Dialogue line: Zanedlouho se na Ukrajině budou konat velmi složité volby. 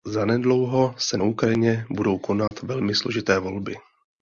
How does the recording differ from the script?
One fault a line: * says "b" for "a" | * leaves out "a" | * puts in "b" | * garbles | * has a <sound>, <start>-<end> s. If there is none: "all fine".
* leaves out "na"
* has a dropout, 2.5-2.5 s